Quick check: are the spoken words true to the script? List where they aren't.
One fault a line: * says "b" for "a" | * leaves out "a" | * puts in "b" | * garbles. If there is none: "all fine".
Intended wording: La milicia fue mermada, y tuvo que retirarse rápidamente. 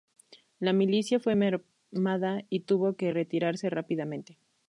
all fine